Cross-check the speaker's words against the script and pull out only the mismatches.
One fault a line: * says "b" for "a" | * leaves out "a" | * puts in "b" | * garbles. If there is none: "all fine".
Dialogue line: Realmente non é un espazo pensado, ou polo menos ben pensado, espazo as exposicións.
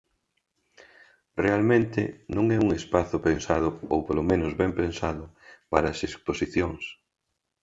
* says "para" for "espazo"